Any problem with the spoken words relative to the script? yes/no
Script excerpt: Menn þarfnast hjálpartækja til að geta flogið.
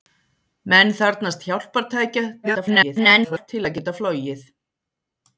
yes